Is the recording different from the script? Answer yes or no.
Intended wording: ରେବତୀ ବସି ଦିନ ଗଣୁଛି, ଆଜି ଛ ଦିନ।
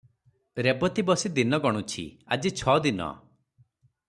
no